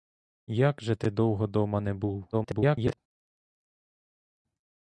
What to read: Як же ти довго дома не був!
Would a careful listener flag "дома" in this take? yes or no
no